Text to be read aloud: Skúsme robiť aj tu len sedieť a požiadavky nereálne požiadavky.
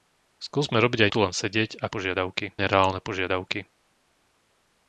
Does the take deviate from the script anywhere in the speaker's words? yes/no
no